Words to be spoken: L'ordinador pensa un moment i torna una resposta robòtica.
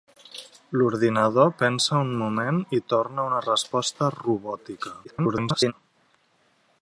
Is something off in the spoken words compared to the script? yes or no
yes